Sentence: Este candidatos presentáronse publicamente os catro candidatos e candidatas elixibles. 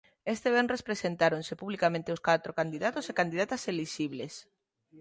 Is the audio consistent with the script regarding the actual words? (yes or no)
no